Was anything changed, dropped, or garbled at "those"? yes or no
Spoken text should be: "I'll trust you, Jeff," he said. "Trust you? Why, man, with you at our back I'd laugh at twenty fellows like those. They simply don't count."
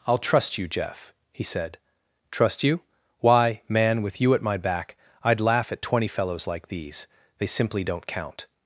yes